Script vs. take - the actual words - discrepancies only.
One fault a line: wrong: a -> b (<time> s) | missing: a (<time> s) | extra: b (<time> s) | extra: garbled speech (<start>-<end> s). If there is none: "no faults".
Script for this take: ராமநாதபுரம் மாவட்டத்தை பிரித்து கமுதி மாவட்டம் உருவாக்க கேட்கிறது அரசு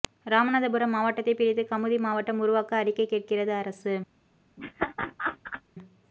extra: அறிக்கை (2.8 s)